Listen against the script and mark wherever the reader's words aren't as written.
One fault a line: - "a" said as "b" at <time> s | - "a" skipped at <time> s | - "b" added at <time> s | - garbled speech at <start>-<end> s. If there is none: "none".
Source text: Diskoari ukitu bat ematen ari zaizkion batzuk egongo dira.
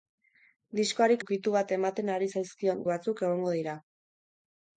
none